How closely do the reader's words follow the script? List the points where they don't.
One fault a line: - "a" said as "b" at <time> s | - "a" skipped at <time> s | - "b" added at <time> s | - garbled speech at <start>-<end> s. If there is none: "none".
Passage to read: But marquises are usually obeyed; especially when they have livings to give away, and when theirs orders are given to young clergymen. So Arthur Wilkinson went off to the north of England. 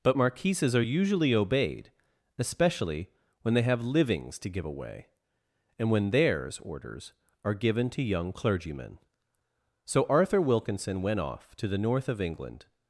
none